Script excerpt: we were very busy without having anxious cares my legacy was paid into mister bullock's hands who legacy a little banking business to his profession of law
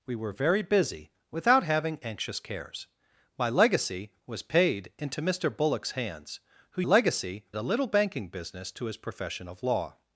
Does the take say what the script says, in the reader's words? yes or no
yes